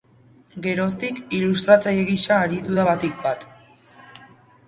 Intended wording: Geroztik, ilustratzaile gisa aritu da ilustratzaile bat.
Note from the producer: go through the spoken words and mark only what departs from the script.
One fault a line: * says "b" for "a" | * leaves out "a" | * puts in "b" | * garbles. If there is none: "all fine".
* says "batik" for "ilustratzaile"